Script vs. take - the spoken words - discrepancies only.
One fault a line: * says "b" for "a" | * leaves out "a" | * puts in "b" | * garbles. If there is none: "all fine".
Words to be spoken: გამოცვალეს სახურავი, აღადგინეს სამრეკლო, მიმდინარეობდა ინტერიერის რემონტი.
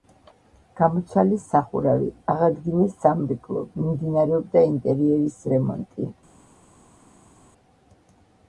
all fine